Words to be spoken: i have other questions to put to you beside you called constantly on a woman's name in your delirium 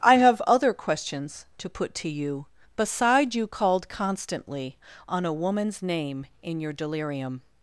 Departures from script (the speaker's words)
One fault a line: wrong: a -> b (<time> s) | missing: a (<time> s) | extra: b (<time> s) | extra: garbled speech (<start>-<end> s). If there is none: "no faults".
no faults